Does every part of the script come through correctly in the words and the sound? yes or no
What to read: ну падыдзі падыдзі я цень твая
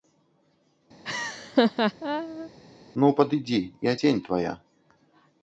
no